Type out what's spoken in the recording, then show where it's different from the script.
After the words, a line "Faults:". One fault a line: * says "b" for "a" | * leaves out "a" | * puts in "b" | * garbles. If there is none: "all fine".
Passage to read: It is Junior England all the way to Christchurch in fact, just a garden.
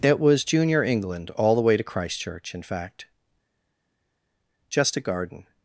It was Junior England all the way to Christchurch in fact, just a garden.
Faults:
* says "was" for "is"